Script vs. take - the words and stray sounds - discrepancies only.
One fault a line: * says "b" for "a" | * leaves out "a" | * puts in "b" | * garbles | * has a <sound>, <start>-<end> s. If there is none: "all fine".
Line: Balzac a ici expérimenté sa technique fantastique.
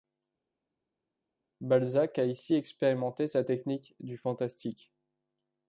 * puts in "du"